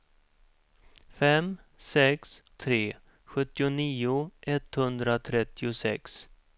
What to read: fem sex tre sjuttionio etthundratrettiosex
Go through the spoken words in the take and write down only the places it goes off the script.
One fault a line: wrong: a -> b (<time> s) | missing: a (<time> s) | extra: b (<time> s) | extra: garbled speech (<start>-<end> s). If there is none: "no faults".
no faults